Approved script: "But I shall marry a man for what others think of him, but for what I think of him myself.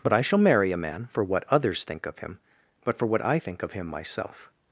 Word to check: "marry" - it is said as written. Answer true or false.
true